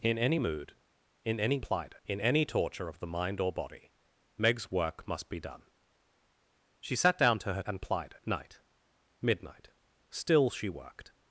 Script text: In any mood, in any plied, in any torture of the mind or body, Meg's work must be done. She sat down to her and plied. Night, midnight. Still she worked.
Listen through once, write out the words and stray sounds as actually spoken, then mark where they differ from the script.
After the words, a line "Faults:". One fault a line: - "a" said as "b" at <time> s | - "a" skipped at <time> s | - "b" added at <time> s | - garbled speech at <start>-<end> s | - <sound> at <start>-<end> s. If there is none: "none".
In any mood, in any plied, in any torture of the mind or body, Meg's work must be done. She sat down to her and plied. Night, midnight. Still she worked.
Faults:
none